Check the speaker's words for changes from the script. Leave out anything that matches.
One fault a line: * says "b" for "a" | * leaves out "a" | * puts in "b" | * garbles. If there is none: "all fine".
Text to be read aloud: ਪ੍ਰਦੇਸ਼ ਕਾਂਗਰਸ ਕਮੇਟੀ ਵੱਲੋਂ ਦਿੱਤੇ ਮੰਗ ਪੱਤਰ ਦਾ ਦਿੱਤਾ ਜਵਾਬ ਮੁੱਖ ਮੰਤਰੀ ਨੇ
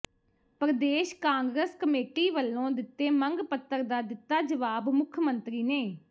all fine